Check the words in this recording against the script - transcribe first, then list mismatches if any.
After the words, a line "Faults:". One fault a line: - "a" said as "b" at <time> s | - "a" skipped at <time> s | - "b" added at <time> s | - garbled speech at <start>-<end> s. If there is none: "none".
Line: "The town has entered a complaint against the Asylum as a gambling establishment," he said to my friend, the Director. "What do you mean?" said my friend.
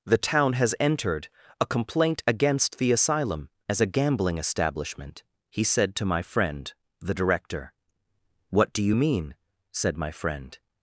"The town has entered a complaint against the Asylum as a gambling establishment," he said to my friend, the Director. "What do you mean?" said my friend.
Faults:
none